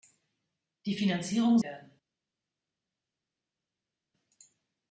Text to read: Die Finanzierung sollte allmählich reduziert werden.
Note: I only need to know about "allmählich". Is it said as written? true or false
false